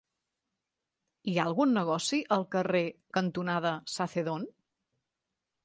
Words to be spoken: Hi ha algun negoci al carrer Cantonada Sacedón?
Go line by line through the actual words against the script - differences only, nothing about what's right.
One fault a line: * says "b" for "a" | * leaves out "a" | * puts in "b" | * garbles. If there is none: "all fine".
all fine